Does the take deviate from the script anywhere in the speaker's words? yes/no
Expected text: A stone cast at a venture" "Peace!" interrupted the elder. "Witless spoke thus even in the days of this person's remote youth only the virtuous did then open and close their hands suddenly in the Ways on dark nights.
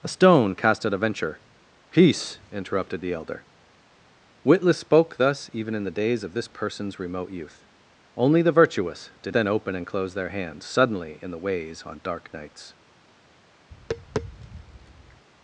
no